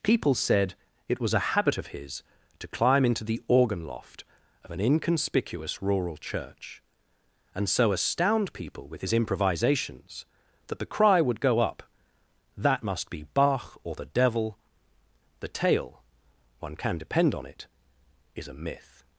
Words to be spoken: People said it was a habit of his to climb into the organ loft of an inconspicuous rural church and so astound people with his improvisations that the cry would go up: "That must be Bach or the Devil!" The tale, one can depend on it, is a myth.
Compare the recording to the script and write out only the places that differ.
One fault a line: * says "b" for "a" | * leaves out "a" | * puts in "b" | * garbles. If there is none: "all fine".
all fine